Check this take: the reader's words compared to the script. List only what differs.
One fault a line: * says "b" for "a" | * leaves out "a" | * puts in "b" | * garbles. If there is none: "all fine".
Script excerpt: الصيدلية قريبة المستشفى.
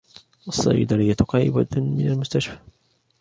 * puts in "من"